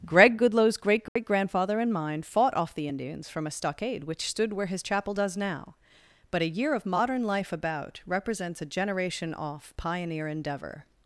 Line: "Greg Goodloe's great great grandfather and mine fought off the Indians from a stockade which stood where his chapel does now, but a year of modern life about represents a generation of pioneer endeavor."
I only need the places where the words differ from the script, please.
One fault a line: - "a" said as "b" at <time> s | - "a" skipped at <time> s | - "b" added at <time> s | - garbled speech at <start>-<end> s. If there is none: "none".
- "of" said as "off" at 9.3 s